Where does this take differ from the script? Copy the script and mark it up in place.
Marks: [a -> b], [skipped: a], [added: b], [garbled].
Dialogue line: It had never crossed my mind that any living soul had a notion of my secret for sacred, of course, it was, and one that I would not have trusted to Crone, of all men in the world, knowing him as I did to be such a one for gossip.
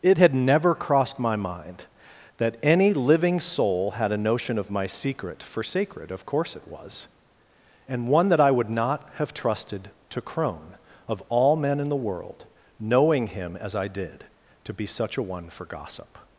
It had never crossed my mind that any living soul had a notion of my secret for sacred, of course, it was, and one that I would not have trusted to Crone, of all men in the world, knowing him as I did to be such a one for gossip.